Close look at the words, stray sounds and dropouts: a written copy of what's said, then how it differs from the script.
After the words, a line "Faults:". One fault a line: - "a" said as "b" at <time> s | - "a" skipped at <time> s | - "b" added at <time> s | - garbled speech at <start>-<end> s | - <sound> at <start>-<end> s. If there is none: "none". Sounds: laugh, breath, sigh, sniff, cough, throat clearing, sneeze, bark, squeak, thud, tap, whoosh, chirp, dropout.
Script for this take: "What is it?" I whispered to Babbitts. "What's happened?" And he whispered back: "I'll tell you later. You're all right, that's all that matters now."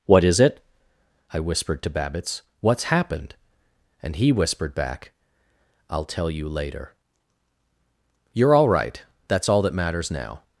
"What is it?" I whispered to Babbitts. "What's happened?" And he whispered back: "I'll tell you later. You're all right, that's all that matters now."
Faults:
none